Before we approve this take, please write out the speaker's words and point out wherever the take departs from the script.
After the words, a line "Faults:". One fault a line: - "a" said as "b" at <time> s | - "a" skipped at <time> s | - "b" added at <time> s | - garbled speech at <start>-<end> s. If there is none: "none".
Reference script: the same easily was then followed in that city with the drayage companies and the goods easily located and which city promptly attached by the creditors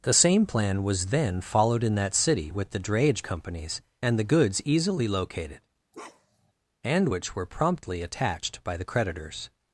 the same plan was then followed in that city with the drayage companies and the goods easily located and which were promptly attached by the creditors
Faults:
- "easily" said as "plan" at 0.5 s
- "city" said as "were" at 7.3 s